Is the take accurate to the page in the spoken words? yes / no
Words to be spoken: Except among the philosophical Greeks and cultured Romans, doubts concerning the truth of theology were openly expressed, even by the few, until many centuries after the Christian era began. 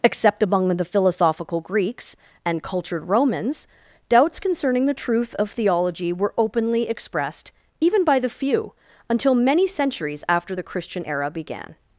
yes